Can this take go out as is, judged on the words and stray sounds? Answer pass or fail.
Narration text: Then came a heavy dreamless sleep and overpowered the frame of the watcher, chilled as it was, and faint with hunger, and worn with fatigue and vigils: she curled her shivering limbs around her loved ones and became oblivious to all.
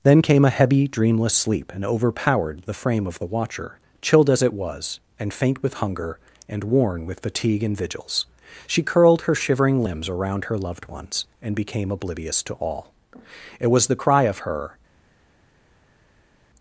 fail